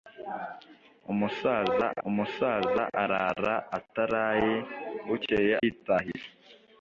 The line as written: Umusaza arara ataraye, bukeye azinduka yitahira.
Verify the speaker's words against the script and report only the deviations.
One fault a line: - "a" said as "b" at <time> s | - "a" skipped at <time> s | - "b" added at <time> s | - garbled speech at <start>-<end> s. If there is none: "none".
- "umusaza" added at 2.1 s
- "azinduka" skipped at 5.5 s